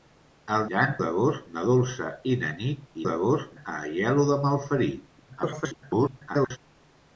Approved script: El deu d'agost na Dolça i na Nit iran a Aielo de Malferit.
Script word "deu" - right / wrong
wrong